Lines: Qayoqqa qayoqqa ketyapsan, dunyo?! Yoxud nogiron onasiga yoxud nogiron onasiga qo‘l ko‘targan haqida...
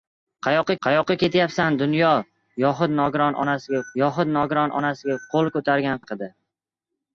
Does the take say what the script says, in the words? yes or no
yes